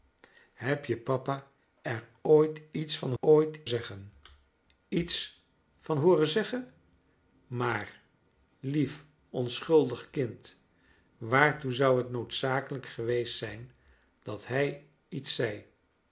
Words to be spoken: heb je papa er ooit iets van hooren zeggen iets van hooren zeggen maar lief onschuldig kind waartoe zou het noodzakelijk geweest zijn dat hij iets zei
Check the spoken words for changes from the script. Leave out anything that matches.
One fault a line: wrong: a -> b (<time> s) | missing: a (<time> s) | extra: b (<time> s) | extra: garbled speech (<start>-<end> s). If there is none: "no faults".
wrong: hooren -> ooit (3.2 s)